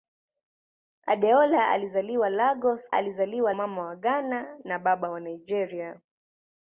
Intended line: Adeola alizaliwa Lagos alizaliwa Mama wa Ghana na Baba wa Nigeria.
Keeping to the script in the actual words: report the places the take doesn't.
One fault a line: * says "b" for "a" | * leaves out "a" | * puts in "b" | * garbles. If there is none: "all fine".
all fine